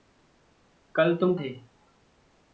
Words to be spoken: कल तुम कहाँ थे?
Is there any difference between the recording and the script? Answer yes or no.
yes